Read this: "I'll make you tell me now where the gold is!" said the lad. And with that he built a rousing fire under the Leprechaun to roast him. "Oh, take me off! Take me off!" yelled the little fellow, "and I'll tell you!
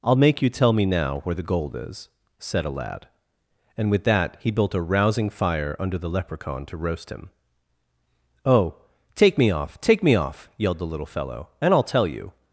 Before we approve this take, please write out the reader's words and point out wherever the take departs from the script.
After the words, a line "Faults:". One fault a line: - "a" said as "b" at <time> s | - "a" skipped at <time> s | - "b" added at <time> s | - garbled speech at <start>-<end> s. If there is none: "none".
"I'll make you tell me now where the gold is!" said a lad. And with that he built a rousing fire under the Leprechaun to roast him. "Oh, take me off! Take me off!" yelled the little fellow, "and I'll tell you!
Faults:
- "the" said as "a" at 2.6 s